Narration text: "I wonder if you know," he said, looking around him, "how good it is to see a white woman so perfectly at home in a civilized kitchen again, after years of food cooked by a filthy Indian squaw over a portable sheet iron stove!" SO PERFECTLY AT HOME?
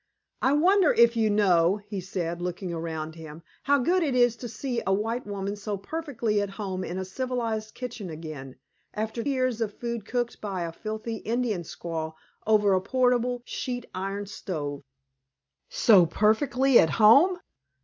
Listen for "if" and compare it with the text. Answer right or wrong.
right